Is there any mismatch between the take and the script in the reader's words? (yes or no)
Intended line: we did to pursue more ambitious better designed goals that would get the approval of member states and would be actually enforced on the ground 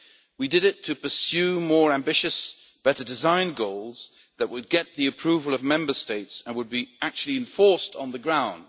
yes